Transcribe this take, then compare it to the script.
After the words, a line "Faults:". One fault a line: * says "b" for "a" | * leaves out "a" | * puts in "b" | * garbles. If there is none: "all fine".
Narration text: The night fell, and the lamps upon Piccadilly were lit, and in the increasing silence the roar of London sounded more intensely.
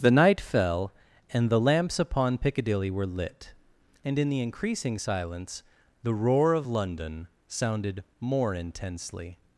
The night fell, and the lamps upon Piccadilly were lit, and in the increasing silence the roar of London sounded more intensely.
Faults:
all fine